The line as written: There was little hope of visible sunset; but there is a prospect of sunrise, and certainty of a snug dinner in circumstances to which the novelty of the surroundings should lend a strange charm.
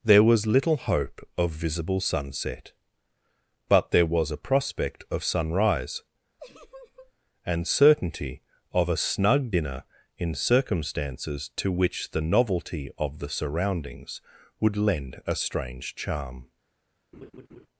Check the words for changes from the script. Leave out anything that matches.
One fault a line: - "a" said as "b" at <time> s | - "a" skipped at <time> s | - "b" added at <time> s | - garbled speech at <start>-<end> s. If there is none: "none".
- "is" said as "was" at 4.1 s
- "should" said as "would" at 14.6 s